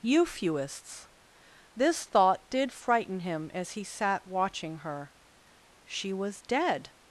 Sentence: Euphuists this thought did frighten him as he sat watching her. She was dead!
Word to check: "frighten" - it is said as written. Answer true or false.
true